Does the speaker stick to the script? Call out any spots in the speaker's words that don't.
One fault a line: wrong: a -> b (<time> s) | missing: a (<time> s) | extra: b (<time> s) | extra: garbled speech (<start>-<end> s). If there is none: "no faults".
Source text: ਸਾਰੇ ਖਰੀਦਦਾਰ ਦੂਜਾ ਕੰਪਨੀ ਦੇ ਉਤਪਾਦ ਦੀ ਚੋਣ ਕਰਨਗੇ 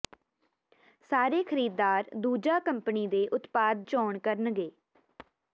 missing: ਦੀ (3.8 s)